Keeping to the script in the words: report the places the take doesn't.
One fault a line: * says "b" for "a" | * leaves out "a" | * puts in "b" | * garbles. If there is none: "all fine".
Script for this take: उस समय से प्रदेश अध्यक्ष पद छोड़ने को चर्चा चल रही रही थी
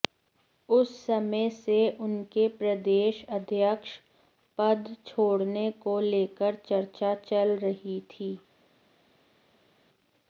* puts in "उनके"
* puts in "लेकर"
* leaves out "रही"